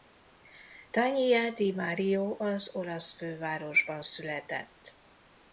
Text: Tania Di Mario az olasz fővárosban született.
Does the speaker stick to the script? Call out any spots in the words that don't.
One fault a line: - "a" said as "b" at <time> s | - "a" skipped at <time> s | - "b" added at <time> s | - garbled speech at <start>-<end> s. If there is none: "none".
none